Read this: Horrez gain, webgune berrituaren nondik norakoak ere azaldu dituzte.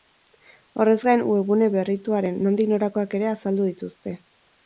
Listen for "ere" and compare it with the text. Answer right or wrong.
right